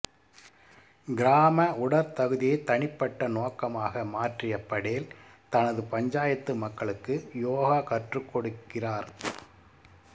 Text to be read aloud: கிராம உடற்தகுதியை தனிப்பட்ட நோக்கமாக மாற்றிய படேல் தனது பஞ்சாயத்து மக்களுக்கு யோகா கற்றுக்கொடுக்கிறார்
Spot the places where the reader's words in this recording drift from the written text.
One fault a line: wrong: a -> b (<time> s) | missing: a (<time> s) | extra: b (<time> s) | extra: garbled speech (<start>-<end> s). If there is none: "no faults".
no faults